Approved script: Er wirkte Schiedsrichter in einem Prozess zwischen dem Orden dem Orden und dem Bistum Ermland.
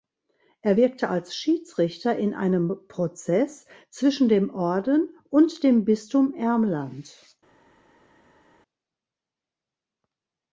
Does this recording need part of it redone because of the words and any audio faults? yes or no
yes